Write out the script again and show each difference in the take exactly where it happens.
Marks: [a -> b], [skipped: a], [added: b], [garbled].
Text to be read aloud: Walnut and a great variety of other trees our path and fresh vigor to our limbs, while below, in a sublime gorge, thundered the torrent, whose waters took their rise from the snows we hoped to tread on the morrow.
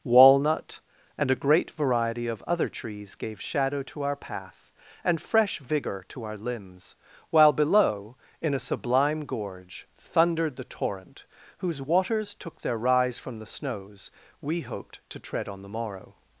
Walnut and a great variety of other trees [added: gave shadow to] our path and fresh vigor to our limbs, while below, in a sublime gorge, thundered the torrent, whose waters took their rise from the snows we hoped to tread on the morrow.